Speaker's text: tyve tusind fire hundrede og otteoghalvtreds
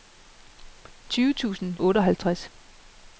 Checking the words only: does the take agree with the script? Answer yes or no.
no